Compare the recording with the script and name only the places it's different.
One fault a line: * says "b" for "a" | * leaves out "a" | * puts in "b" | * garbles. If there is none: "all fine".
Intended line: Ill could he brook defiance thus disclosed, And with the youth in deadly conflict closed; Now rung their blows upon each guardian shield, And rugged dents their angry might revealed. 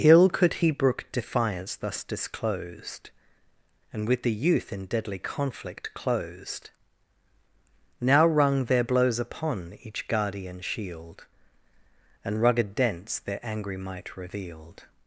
all fine